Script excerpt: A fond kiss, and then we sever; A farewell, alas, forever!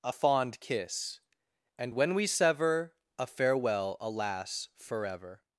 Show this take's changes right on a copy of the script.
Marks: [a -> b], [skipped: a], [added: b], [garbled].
A fond kiss, and [then -> when] we sever; A farewell, alas, forever!